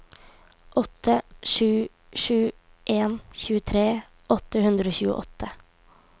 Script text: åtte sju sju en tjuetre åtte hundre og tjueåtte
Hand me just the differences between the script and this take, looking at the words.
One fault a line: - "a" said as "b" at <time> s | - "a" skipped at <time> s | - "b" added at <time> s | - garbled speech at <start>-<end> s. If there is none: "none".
none